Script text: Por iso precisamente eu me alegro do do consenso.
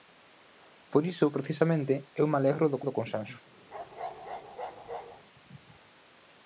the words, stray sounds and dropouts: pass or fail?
fail